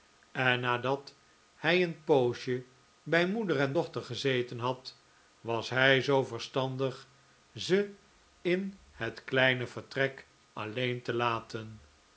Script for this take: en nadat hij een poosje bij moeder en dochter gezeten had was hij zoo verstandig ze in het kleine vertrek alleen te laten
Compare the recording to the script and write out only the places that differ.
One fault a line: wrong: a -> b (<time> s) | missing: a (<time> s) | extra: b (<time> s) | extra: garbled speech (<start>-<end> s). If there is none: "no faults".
no faults